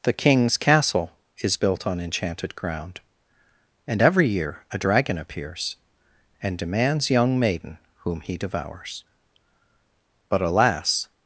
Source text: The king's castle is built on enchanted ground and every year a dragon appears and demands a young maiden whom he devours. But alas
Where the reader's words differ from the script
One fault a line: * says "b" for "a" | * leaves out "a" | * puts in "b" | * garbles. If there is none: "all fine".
* leaves out "a"